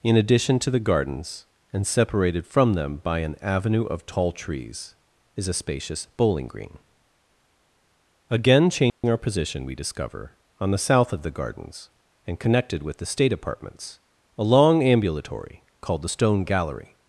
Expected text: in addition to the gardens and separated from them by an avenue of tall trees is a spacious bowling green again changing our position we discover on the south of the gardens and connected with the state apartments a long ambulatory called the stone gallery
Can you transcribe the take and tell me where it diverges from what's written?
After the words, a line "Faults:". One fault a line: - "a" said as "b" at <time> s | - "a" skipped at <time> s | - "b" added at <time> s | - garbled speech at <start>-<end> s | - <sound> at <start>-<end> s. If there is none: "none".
in addition to the gardens and separated from them by an avenue of tall trees is a spacious bowling green again changing our position we discover on the south of the gardens and connected with the state apartments a long ambulatory called the stone gallery
Faults:
- dropout at 8.9-9.0 s